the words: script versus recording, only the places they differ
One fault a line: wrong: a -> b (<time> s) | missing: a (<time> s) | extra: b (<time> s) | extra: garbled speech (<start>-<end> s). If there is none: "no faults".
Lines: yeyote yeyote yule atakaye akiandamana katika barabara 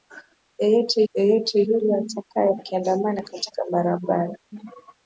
no faults